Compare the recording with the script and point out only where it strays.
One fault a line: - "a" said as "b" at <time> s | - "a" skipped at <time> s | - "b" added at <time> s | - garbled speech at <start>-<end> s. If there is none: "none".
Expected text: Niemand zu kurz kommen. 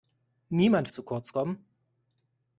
none